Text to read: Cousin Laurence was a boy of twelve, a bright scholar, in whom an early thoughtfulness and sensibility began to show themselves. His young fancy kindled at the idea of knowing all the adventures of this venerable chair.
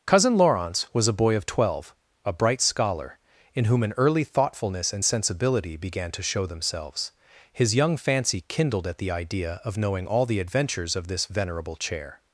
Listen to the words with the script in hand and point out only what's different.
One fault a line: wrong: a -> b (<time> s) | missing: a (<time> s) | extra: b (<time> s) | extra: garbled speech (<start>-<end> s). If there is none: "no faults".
no faults